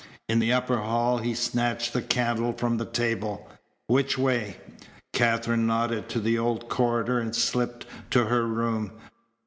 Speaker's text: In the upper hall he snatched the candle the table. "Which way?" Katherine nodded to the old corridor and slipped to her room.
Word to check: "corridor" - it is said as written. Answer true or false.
true